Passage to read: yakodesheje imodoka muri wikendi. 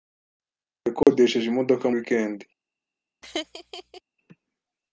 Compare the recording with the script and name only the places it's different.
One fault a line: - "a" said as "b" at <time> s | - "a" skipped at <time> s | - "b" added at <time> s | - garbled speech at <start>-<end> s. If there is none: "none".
- "muri" skipped at 1.9 s